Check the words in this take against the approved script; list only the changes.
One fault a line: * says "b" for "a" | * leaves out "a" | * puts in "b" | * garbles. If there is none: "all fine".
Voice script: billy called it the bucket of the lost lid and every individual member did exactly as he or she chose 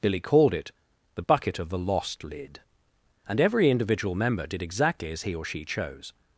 all fine